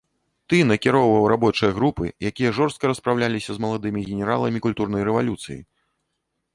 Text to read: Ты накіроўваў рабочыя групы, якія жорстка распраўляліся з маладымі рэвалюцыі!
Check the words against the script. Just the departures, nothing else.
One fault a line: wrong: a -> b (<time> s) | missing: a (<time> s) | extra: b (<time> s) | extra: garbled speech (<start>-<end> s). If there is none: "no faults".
extra: генераламі культурнай (4.1 s)